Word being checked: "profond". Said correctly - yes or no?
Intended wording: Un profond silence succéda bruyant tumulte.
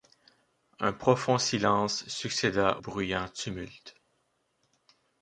yes